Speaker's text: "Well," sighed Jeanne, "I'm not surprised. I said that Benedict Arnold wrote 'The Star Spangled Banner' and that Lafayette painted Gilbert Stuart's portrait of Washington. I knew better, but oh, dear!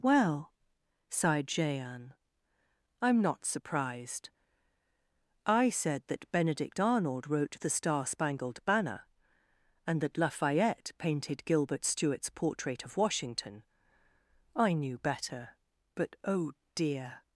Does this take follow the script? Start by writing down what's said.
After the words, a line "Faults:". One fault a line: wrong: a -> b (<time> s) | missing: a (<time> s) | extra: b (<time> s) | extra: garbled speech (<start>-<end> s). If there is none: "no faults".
"Well," sighed Jeanne, "I'm not surprised. I said that Benedict Arnold wrote 'The Star Spangled Banner' and that Lafayette painted Gilbert Stuart's portrait of Washington. I knew better, but oh, dear!
Faults:
no faults